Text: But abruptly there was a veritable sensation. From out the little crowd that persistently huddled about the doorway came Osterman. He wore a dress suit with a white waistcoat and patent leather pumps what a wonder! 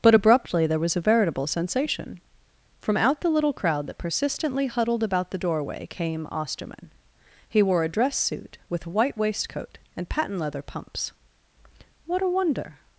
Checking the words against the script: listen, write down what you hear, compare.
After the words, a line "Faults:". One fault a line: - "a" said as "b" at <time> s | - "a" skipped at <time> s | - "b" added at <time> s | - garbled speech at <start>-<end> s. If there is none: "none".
But abruptly there was a veritable sensation. From out the little crowd that persistently huddled about the doorway came Osterman. He wore a dress suit with a white waistcoat and patent leather pumps what a wonder!
Faults:
none